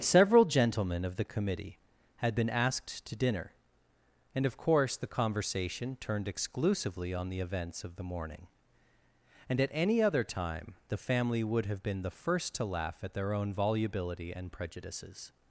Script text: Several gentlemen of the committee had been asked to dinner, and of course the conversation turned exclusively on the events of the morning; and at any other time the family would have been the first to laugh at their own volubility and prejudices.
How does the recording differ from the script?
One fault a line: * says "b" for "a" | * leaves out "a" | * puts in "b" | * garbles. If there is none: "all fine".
all fine